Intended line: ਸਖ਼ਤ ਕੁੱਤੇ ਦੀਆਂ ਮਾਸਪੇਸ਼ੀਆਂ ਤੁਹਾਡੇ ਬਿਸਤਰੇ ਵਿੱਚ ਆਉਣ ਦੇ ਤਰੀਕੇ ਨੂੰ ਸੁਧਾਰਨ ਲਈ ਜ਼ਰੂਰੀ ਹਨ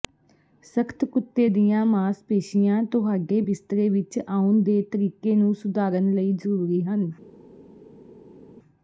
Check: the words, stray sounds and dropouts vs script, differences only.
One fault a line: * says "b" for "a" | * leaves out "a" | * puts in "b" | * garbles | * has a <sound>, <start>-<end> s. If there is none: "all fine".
all fine